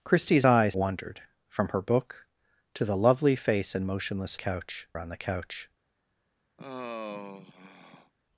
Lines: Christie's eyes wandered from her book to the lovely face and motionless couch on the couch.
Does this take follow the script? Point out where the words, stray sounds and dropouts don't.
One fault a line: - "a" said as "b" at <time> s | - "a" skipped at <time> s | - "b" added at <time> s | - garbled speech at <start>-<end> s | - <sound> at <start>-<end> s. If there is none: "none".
- sigh at 6.6-8.1 s